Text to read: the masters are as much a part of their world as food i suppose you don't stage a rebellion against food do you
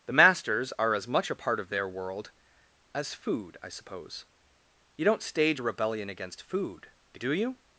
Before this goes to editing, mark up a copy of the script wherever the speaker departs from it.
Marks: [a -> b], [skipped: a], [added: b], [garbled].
the masters are as much a part of their world as food i suppose you don't stage a rebellion against food do you